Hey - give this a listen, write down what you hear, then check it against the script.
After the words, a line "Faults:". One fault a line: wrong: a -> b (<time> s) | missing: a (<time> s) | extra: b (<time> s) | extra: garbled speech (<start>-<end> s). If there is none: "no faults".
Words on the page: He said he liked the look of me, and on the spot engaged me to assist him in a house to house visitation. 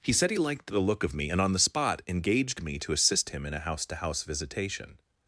He said he liked the look of me, and on the spot engaged me to assist him in a house to house visitation.
Faults:
no faults